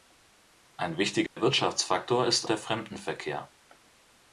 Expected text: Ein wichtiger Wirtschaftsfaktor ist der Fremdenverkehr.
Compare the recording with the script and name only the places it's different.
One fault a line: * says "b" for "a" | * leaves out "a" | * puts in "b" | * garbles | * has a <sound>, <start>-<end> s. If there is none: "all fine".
* has a dropout, 1.3-1.4 s